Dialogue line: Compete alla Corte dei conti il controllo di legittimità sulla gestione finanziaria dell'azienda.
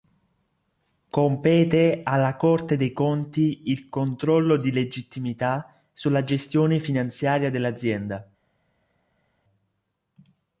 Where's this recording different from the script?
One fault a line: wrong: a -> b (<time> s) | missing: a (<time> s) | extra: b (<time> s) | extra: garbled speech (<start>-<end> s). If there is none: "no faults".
no faults